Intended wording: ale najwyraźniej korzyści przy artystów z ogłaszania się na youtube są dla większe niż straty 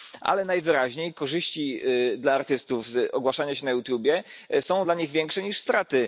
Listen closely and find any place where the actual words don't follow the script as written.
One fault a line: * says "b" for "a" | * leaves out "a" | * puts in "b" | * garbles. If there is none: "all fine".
* says "dla" for "przy"
* puts in "nich"